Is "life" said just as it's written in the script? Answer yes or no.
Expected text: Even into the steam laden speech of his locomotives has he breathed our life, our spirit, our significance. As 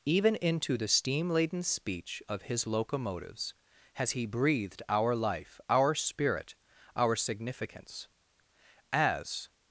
yes